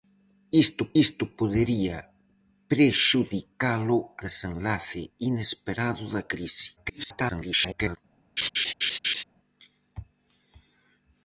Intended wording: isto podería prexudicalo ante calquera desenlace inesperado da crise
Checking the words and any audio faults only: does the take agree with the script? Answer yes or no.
no